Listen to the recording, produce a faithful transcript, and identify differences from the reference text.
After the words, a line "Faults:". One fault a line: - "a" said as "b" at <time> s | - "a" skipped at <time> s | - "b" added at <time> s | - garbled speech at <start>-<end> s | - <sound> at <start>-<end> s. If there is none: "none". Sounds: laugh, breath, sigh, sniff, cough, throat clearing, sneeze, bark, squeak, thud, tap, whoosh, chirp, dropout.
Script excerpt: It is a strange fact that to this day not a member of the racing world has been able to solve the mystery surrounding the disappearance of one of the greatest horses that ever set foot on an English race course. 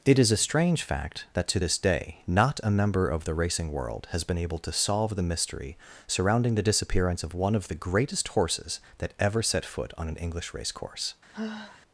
It is a strange fact that to this day not a member of the racing world has been able to solve the mystery surrounding the disappearance of one of the greatest horses that ever set foot on an English race course.
Faults:
- sigh at 11.3-11.8 s